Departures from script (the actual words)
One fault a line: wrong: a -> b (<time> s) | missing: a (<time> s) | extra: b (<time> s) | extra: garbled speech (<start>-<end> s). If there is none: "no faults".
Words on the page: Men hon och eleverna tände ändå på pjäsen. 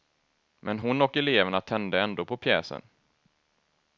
no faults